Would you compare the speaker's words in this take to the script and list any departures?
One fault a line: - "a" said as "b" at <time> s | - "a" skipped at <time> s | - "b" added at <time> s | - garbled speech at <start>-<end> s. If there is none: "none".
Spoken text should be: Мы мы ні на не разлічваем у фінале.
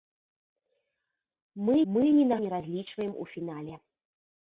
none